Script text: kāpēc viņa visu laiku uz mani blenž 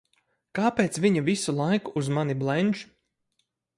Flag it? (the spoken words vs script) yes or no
no